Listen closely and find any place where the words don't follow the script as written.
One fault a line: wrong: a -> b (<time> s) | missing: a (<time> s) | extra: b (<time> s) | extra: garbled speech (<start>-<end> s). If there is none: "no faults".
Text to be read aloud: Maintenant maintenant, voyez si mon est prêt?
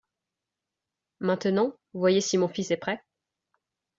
missing: maintenant (1.8 s)
extra: fils (2.5 s)